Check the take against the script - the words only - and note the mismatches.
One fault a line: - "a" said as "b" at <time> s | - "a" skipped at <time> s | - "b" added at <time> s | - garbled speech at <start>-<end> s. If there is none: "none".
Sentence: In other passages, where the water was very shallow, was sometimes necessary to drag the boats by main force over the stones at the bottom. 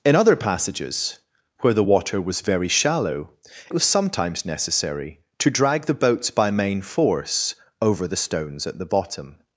none